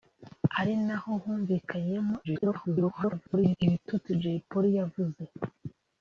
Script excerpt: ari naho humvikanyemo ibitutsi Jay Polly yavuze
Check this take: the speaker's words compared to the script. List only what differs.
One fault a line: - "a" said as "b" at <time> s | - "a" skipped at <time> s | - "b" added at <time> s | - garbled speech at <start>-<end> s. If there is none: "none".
- garbled speech at 2.2-3.6 s